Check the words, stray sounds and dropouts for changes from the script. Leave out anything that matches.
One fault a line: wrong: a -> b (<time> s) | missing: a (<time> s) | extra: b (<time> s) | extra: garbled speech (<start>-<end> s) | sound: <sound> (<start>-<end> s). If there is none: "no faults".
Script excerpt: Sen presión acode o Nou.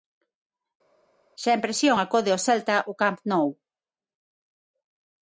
extra: Celta ao Camp (2.5 s)